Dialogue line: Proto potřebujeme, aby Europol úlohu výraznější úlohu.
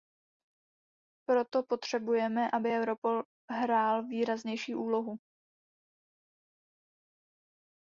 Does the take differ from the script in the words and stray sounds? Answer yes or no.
yes